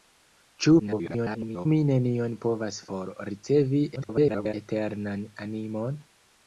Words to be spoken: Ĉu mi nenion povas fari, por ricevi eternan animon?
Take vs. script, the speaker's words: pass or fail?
fail